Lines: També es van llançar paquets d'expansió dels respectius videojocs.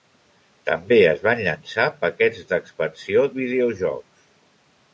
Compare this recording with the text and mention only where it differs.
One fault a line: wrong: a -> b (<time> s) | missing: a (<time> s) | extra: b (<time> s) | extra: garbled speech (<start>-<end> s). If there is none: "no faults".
missing: dels respectius (3.2 s)